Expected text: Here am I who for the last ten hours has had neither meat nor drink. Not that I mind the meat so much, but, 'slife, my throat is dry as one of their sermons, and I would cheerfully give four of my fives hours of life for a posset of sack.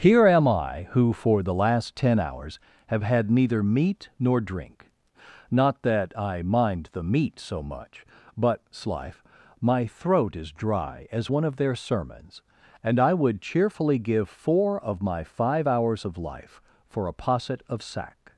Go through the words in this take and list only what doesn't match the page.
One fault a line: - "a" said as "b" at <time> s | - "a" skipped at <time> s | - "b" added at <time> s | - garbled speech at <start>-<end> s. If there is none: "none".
- "has" said as "have" at 2.9 s
- "fives" said as "five" at 15.2 s